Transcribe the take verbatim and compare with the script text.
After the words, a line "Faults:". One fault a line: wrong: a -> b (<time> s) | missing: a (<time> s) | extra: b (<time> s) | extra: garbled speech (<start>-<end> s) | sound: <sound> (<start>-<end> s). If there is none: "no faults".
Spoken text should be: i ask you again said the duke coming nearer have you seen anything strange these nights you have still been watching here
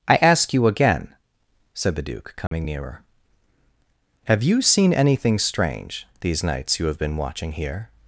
i ask you again said the duke coming nearer have you seen anything strange these nights you have been watching here
Faults:
sound: dropout (2.5-2.5 s)
missing: still (7.0 s)